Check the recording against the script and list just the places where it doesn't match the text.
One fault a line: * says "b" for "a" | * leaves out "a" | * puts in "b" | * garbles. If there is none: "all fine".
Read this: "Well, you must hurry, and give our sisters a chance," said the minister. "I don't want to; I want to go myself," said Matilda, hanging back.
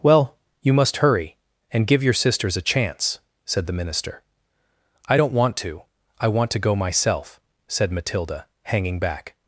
* says "your" for "our"